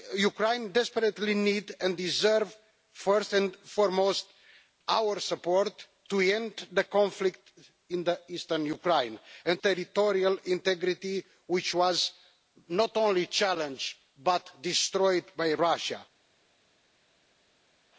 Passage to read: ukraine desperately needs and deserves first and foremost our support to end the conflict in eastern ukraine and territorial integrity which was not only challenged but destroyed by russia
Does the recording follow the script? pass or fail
pass